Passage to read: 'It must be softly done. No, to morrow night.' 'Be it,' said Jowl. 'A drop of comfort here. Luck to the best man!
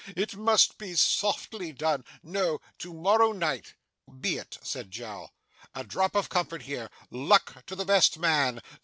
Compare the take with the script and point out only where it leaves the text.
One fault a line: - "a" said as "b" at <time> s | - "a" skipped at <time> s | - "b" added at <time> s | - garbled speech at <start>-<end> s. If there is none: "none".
none